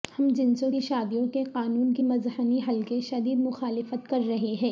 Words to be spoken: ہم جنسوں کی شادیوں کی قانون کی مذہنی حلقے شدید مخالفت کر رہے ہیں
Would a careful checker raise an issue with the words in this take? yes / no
yes